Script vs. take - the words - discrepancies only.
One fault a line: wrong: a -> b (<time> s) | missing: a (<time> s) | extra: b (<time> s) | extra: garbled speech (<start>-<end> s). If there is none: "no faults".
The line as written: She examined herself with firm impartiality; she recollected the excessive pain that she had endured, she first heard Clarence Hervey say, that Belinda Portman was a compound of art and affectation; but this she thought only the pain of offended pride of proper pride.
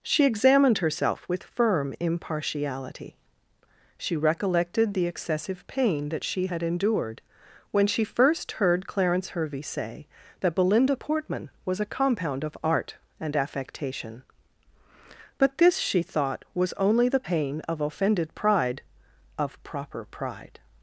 extra: when (7.7 s)
extra: was (16.5 s)